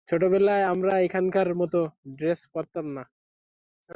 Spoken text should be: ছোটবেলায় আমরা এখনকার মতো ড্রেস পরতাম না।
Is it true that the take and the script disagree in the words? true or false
false